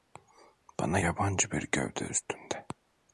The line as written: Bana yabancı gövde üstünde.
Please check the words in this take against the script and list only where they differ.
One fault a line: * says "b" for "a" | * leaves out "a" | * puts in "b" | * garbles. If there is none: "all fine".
* puts in "bir"